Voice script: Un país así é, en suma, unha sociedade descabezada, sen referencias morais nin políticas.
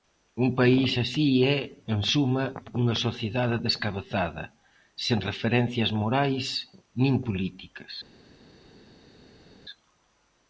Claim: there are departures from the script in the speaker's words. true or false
false